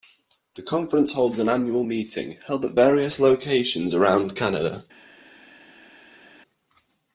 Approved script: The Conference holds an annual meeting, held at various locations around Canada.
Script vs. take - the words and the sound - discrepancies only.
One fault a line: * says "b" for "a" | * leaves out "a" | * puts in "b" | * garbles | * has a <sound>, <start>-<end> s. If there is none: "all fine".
all fine